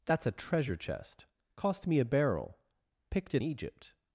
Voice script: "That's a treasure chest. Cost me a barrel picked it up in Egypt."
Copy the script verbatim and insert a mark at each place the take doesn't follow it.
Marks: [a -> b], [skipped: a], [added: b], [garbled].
"That's a treasure chest. Cost me a barrel picked it [skipped: up in] Egypt."